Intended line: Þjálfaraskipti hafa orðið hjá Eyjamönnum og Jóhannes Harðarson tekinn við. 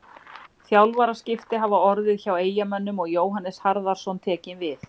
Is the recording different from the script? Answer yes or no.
no